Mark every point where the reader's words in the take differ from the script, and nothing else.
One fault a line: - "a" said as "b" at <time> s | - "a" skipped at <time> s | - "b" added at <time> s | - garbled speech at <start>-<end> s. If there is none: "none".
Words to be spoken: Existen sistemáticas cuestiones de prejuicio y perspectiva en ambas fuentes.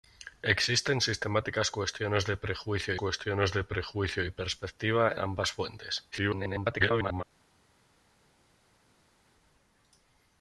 - "cuestiones de prejuicio" added at 2.9 s
- "en" skipped at 5.1 s
- garbled speech at 6.1-7.2 s